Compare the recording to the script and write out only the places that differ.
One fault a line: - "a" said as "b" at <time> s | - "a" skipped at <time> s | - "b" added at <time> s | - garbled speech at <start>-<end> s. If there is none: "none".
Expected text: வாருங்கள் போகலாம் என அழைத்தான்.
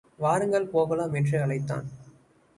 - "என" said as "என்று" at 1.1 s